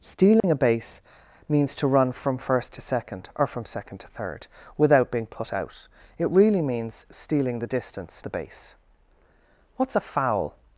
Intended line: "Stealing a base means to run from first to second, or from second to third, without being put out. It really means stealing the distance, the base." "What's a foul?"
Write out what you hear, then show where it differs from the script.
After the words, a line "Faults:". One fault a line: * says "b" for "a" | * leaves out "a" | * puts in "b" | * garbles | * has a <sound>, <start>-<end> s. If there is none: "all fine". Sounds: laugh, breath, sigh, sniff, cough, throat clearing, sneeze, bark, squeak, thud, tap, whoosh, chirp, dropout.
"Stealing a base means to run from first to second, or from second to third, without being put out. It really means stealing the distance, the base." "What's a foul?"
Faults:
* has a dropout, 0.4-0.4 s